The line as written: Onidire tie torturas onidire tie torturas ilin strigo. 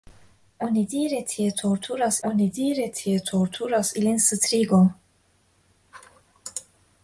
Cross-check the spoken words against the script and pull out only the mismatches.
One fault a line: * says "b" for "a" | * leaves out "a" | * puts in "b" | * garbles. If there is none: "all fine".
all fine